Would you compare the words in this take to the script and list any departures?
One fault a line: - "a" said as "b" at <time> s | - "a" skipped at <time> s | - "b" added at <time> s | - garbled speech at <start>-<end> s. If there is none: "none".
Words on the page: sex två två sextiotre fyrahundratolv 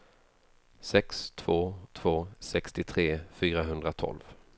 none